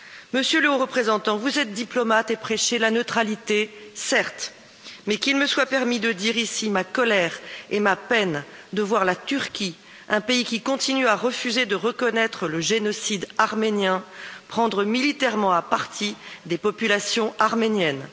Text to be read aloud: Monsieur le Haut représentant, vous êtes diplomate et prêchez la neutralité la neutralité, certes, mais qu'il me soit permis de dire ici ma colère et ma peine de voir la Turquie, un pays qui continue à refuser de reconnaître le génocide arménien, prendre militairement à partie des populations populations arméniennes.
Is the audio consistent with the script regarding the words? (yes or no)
no